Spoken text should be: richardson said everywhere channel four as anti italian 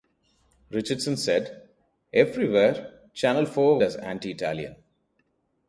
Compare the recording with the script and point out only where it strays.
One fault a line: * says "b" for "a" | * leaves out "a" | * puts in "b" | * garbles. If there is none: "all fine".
all fine